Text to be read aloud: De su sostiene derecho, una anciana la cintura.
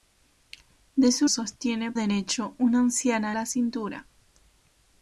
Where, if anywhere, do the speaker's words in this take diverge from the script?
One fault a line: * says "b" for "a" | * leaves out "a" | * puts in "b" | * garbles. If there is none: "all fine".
all fine